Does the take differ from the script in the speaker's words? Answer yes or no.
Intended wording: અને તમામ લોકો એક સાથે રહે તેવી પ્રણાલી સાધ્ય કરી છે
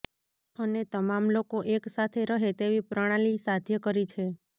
no